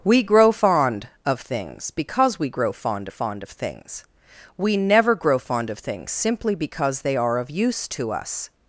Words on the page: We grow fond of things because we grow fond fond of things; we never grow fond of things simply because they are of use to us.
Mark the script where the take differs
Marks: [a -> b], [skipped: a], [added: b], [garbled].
We grow fond of things because we grow fond fond of things; we never grow fond of things simply because they are of use to us.